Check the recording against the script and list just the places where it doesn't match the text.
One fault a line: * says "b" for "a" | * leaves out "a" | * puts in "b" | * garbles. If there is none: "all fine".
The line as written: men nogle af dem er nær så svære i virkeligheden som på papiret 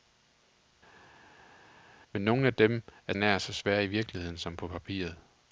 all fine